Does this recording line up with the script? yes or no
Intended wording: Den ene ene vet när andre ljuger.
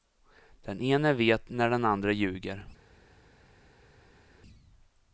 no